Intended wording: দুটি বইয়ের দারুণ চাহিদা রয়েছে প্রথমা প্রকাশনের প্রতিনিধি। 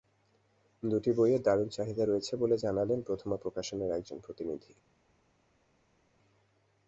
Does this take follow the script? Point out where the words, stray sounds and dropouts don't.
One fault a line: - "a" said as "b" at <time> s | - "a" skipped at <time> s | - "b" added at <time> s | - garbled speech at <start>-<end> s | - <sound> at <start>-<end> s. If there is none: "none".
- "বলে জানালেন" added at 2.4 s
- "একজন" added at 3.9 s